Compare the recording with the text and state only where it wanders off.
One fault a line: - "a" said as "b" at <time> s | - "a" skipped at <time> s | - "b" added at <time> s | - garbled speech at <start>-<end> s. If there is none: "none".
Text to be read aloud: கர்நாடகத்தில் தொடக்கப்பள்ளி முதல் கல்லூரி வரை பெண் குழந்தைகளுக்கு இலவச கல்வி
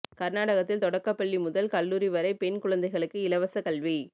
none